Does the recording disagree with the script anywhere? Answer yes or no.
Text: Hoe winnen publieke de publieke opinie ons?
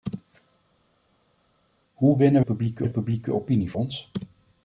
no